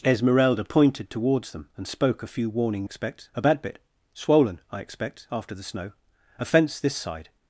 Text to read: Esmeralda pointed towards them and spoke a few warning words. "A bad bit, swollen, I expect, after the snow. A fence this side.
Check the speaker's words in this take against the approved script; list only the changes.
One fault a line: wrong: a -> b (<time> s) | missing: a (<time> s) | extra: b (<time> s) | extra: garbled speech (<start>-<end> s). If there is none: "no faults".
wrong: words -> expect (2.8 s)